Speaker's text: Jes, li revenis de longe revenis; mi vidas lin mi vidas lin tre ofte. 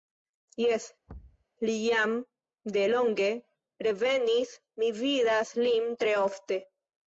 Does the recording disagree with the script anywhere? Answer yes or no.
yes